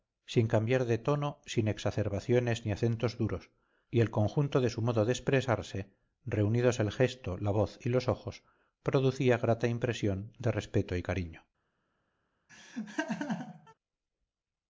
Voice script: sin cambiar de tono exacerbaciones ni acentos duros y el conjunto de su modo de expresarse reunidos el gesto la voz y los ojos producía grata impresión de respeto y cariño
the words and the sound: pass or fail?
fail